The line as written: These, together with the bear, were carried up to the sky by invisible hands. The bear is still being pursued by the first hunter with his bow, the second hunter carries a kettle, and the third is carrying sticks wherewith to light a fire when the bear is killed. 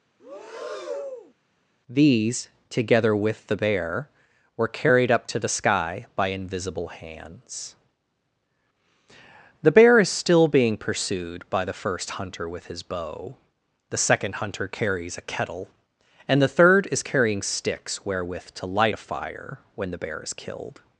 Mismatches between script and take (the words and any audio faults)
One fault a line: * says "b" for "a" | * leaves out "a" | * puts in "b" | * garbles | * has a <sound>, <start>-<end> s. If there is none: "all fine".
* has a breath, 0.2-1.3 s